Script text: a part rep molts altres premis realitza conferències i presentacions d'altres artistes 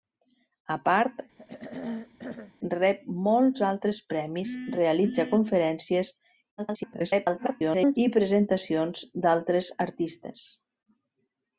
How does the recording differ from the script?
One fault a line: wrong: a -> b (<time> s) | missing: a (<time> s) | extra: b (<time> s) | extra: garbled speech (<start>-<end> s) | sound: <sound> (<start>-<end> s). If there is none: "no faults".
sound: throat clearing (1.4-2.5 s)
extra: garbled speech (6.6-8.0 s)